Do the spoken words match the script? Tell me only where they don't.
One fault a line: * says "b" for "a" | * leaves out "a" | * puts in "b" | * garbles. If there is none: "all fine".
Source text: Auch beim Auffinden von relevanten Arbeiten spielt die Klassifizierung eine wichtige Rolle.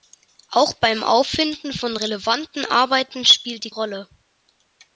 * leaves out "Klassifizierung eine wichtige"